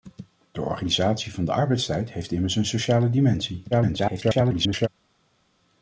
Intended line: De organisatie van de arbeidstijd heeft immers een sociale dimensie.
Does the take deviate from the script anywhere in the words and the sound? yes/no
yes